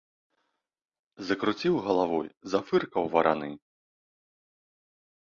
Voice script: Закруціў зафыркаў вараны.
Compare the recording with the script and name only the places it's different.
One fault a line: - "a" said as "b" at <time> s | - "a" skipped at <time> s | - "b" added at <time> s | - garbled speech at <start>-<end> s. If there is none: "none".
- "галавой" added at 1.9 s